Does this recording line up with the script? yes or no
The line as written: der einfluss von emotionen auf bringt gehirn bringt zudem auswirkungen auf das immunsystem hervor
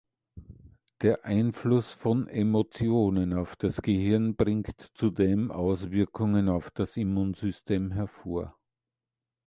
no